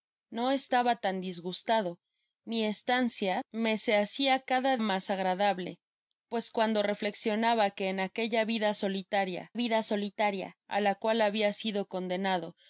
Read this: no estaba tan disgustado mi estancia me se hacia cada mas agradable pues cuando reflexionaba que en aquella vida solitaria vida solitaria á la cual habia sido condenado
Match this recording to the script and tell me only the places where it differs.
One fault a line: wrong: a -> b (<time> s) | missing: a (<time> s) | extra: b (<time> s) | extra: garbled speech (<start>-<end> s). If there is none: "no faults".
no faults